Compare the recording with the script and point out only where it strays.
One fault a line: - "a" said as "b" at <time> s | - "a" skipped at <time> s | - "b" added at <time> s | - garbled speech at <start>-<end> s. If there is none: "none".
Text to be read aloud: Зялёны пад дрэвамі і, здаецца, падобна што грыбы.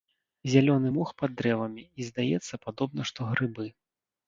- "мох" added at 1.0 s